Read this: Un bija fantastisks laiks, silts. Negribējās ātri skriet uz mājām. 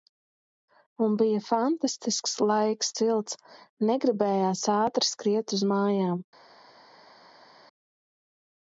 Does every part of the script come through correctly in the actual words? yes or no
yes